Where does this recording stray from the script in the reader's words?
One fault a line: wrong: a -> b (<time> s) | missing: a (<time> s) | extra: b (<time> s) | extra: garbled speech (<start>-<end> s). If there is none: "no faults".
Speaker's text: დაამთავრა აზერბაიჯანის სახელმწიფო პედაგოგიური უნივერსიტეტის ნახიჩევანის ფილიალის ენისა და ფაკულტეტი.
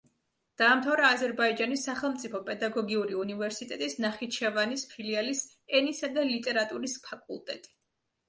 extra: ლიტერატურის (6.3 s)